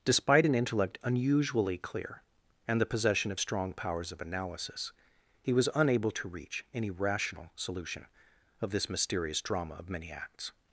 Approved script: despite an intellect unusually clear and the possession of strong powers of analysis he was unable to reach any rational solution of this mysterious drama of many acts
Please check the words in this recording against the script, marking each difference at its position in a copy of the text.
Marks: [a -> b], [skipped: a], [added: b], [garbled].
despite an intellect unusually clear and the possession of strong powers of analysis he was unable to reach any rational solution of this mysterious drama of many acts